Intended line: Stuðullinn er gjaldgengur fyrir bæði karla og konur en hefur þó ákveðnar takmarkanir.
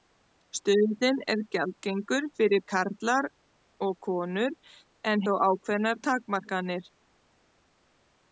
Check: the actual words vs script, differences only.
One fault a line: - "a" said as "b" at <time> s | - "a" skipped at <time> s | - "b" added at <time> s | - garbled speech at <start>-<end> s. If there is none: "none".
- "bæði" skipped at 2.6 s
- "hefur" skipped at 5.3 s